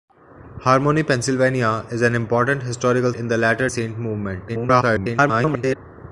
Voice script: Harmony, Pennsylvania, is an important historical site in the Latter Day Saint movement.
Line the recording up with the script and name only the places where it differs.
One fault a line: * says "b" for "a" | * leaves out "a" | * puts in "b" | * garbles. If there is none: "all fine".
* leaves out "site"
* leaves out "Day"
* garbles